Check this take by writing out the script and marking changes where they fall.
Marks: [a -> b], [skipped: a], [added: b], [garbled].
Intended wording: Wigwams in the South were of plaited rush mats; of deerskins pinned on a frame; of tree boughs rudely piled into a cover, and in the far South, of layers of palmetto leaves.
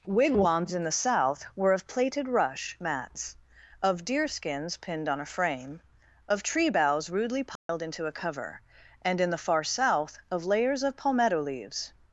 Wigwams in the South were of plaited rush mats; of deerskins pinned on a frame; of tree boughs rudely piled into a cover, and in the far South, of layers of palmetto leaves.